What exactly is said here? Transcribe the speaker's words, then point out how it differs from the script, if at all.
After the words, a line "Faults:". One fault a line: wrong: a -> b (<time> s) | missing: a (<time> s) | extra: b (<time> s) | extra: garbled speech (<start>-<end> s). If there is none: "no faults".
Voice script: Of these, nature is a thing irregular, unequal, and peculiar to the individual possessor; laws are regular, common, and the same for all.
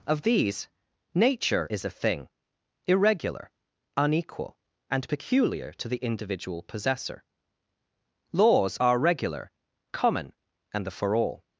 Of these, nature is a thing irregular, unequal, and peculiar to the individual possessor; laws are regular, common, and the for all.
Faults:
missing: same (10.9 s)